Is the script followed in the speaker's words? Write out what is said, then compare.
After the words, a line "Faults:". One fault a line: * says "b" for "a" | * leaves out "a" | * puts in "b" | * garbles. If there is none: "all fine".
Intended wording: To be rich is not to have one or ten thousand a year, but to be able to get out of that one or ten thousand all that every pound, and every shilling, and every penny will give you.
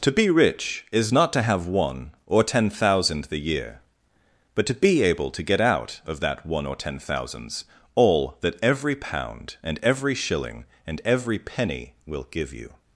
To be rich is not to have one or ten thousand the year, but to be able to get out of that one or ten thousands all that every pound, and every shilling, and every penny will give you.
Faults:
* says "the" for "a"
* says "thousands" for "thousand"